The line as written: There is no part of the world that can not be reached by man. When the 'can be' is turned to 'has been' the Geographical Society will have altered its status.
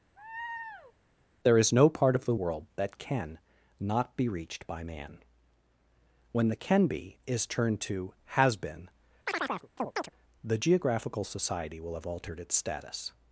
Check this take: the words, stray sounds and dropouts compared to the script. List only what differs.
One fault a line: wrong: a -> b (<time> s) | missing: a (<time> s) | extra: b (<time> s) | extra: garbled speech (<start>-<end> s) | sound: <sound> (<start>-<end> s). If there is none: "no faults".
sound: laugh (0.2-0.9 s)
sound: chirp (9.3-10.1 s)